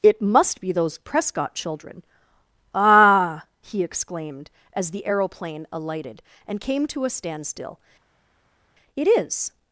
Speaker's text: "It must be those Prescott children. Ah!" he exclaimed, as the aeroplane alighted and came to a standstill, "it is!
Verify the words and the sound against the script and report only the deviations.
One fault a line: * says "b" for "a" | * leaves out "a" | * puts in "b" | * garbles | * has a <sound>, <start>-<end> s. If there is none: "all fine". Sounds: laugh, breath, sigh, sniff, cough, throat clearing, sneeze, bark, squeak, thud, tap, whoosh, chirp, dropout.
all fine